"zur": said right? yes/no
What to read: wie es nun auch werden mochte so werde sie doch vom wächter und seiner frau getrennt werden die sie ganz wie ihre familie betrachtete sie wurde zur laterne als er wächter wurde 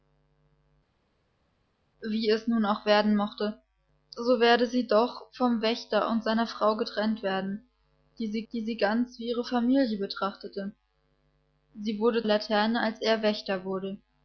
no